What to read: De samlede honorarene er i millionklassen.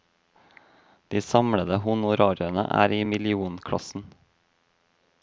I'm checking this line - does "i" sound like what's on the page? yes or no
yes